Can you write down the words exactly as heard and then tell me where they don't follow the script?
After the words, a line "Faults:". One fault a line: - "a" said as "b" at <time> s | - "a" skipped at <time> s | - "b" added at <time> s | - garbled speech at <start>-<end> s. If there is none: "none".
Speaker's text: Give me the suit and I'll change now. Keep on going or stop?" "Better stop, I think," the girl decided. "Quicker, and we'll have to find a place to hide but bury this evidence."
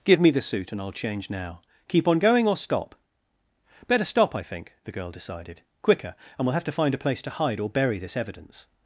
Give me the suit and I'll change now. Keep on going or stop?" "Better stop, I think," the girl decided. "Quicker, and we'll have to find a place to hide or bury this evidence."
Faults:
- "but" said as "or" at 7.6 s